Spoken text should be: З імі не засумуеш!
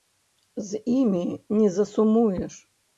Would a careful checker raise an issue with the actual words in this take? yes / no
no